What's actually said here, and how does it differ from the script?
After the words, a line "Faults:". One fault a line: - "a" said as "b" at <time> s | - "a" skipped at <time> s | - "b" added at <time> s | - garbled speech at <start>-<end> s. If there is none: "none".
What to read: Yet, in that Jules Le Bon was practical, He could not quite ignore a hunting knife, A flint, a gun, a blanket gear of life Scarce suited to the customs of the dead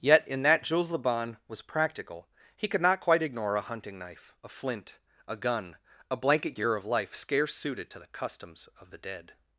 Yet, in that Jules Le Bon was practical, He could not quite ignore a hunting knife, A flint, a gun, a blanket gear of life Scarce suited to the customs of the dead
Faults:
none